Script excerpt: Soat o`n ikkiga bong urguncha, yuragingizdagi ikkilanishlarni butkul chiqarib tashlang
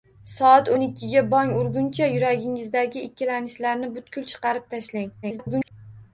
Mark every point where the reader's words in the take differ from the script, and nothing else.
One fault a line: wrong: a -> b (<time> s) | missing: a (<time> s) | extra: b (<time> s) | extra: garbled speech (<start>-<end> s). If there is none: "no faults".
extra: garbled speech (5.2-5.7 s)